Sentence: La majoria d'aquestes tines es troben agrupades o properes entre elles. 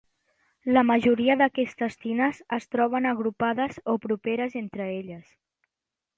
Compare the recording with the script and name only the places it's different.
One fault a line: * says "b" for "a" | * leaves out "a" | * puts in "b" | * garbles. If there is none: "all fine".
all fine